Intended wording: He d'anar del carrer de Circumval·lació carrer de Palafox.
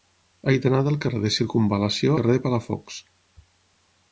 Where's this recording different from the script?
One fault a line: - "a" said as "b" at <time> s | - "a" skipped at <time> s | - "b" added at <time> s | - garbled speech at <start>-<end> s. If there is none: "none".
none